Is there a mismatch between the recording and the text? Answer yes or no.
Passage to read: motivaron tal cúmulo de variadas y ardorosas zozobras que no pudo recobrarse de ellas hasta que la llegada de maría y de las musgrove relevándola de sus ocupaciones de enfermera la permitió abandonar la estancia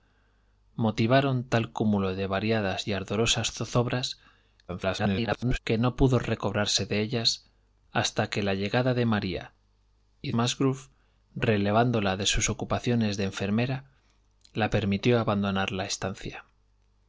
yes